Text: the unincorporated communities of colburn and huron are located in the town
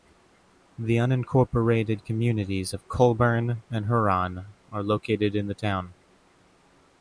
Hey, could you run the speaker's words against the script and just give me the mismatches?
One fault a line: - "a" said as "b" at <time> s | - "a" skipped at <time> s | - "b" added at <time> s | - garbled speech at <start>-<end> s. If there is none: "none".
none